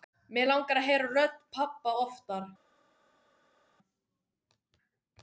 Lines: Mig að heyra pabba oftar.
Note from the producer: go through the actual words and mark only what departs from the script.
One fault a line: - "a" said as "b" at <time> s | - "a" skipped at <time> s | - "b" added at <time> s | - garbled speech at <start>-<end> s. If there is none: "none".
- "langar" added at 0.5 s
- "rödd" added at 1.2 s